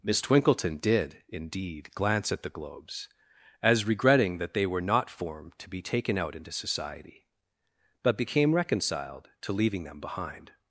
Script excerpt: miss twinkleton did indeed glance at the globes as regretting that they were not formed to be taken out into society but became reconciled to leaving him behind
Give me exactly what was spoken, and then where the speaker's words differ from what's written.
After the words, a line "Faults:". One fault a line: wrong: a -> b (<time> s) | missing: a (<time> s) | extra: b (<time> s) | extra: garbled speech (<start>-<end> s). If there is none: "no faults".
miss twinkleton did indeed glance at the globes as regretting that they were not formed to be taken out into society but became reconciled to leaving them behind
Faults:
wrong: him -> them (9.8 s)